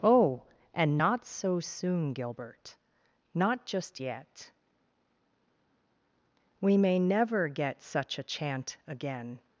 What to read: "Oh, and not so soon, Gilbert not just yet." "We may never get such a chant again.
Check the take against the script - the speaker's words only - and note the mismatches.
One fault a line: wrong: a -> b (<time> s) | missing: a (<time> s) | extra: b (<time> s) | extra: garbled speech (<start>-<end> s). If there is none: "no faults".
no faults